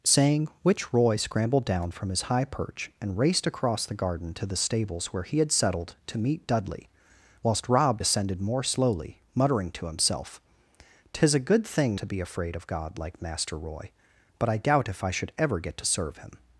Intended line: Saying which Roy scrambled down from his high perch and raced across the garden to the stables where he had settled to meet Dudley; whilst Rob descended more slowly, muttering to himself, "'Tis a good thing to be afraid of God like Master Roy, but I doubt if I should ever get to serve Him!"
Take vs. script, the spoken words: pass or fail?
pass